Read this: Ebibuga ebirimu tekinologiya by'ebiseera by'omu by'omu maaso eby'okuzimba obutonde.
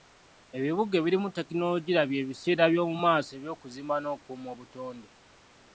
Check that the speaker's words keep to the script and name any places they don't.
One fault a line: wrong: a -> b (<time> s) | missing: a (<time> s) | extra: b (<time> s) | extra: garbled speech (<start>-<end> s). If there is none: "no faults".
missing: by'omu (3.0 s)
extra: n'okukuuma (4.0 s)